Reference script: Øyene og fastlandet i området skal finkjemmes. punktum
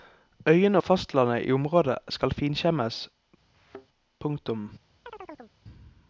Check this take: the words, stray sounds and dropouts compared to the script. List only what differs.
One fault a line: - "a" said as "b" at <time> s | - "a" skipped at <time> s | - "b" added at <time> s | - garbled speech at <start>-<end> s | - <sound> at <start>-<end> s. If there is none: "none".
- thud at 3.5-3.9 s
- chirp at 5.1-5.6 s